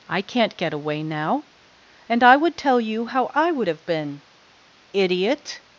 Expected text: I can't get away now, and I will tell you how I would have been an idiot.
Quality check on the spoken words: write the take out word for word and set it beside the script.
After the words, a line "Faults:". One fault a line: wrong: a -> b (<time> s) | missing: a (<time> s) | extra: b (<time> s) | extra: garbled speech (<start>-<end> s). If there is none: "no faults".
I can't get away now, and I would tell you how I would have been idiot.
Faults:
wrong: will -> would (2.4 s)
missing: an (4.2 s)